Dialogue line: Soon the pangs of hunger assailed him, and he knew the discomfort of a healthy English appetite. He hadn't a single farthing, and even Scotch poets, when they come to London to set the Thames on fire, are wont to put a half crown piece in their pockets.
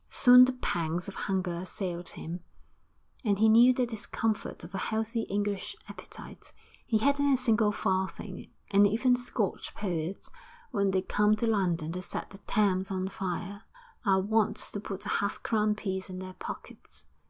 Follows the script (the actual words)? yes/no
yes